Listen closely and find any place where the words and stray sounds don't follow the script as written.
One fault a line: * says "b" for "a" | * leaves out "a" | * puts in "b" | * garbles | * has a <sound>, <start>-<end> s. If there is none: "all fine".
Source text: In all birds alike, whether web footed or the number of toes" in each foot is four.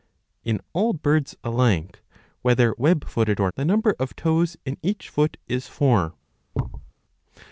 * has a thud, 6.5-6.9 s